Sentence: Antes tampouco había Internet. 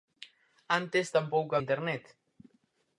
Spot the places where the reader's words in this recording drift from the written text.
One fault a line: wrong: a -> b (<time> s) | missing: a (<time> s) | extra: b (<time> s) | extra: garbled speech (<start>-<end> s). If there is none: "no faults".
missing: había (1.6 s)